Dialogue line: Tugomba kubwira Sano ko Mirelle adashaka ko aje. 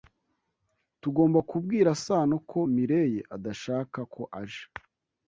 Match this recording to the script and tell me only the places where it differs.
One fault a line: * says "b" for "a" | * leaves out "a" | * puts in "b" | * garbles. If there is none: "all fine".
all fine